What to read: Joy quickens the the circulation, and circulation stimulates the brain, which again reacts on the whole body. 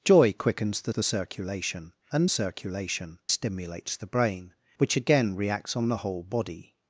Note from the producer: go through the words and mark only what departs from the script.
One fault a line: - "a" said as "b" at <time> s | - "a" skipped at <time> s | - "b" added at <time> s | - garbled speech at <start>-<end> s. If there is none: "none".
none